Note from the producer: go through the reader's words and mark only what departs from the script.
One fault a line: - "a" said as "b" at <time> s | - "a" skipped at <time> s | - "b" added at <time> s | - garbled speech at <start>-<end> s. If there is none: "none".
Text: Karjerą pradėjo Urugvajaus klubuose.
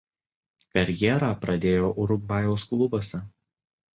none